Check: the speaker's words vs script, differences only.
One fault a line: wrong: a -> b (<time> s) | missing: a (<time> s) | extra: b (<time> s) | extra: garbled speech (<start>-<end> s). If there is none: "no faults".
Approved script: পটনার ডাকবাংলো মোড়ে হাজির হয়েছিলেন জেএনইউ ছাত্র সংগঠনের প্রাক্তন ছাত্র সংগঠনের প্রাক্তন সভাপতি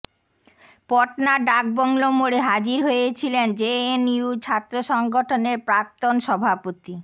missing: ছাত্র সংগঠনের প্রাক্তন (6.1 s)